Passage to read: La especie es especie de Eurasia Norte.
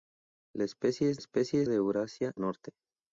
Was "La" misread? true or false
false